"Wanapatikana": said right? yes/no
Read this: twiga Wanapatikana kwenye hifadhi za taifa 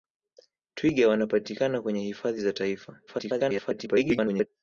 yes